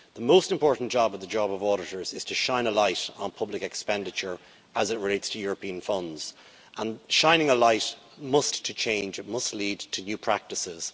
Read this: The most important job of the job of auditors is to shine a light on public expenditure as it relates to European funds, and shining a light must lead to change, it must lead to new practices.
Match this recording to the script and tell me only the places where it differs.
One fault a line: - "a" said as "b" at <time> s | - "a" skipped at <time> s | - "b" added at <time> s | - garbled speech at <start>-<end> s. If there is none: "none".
- "lead" skipped at 8.5 s